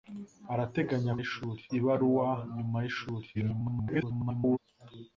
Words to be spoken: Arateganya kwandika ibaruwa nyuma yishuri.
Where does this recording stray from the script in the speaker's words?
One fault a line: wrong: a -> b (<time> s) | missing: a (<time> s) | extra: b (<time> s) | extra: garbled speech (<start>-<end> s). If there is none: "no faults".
wrong: kwandika -> yishuri (1.2 s)
extra: garbled speech (3.3-4.6 s)